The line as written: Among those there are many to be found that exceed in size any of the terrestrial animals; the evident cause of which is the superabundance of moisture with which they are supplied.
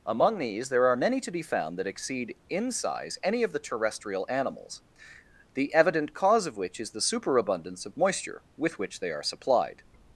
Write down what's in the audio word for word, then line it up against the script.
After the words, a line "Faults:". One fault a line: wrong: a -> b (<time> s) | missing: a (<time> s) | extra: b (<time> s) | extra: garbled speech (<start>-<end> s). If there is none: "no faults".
Among these there are many to be found that exceed in size any of the terrestrial animals; the evident cause of which is the superabundance of moisture with which they are supplied.
Faults:
wrong: those -> these (0.4 s)